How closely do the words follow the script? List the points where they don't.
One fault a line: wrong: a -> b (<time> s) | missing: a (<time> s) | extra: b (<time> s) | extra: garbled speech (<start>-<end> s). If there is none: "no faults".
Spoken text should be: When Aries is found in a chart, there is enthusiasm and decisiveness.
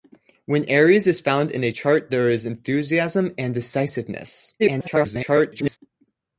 extra: garbled speech (4.6-5.8 s)